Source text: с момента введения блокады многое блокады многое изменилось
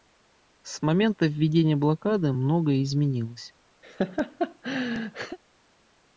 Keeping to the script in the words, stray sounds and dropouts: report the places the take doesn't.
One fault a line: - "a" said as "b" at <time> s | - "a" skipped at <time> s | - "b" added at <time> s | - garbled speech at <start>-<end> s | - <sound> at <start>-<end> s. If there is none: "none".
- "блокады многое" skipped at 2.8 s
- laugh at 3.8-5.4 s